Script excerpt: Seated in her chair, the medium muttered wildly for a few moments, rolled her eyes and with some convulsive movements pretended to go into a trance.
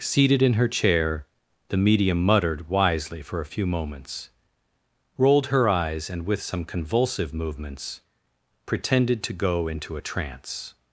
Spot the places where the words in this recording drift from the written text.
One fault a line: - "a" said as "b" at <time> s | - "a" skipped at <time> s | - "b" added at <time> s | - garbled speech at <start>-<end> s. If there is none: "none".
- "wildly" said as "wisely" at 2.7 s